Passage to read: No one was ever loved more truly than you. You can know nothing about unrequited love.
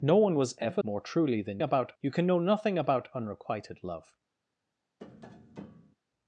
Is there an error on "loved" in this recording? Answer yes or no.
yes